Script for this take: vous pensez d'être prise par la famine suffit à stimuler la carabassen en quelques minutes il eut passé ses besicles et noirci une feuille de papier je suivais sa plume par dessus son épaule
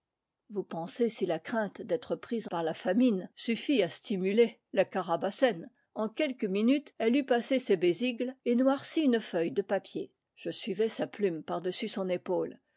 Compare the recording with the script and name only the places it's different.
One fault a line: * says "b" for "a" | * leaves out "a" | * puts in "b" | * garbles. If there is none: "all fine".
* puts in "si la crainte"
* says "elle" for "il"